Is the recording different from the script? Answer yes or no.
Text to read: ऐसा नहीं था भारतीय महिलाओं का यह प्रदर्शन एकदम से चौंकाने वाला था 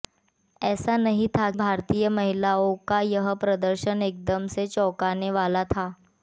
no